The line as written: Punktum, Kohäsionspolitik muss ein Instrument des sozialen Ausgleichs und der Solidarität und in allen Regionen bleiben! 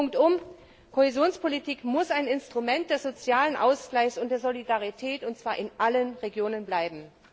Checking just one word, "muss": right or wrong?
right